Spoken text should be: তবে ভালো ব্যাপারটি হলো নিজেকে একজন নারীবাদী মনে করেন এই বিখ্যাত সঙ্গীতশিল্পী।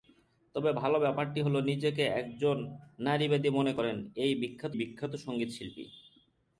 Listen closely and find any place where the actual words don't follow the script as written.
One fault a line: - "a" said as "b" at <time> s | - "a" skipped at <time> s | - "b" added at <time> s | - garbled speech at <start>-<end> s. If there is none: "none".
- "বিখ্যাত" added at 4.7 s